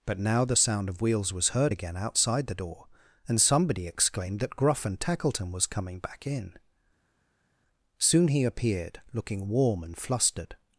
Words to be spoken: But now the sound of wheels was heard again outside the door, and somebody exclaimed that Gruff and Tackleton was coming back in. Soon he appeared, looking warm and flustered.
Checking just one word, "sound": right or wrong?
right